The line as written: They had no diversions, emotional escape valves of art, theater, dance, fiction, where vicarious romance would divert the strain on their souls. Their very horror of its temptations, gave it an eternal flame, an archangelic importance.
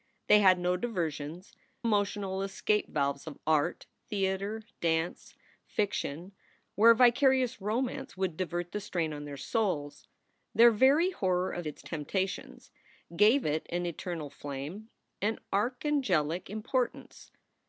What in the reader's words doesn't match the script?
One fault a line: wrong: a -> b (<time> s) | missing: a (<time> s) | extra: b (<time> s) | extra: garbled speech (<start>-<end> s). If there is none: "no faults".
no faults